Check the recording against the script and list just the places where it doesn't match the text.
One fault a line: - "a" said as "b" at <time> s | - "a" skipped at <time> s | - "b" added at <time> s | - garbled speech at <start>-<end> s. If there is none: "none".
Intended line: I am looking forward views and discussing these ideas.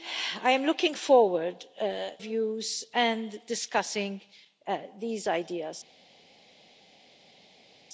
none